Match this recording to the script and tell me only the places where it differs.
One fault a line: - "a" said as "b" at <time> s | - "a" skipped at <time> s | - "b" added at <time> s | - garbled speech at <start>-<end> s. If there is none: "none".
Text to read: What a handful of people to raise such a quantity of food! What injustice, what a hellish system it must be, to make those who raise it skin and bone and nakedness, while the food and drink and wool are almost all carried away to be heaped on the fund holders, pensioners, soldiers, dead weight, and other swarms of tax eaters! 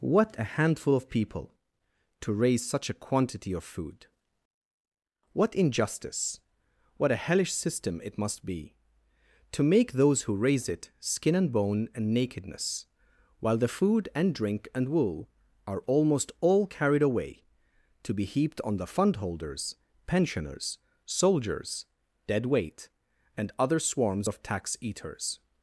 none